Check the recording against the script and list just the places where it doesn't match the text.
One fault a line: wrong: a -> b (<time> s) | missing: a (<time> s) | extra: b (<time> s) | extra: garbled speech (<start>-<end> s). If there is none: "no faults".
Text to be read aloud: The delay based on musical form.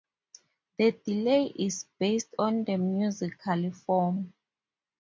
extra: is (1.6 s)
extra: the (2.6 s)